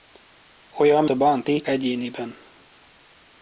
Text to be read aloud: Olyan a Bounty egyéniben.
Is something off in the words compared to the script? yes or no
no